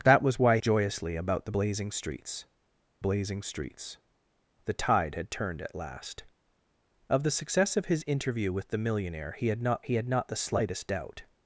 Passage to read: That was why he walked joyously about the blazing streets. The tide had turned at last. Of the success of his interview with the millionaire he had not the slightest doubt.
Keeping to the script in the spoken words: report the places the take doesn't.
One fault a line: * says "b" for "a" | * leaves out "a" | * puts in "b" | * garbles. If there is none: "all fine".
* leaves out "he walked"
* puts in "blazing streets"
* puts in "he had not"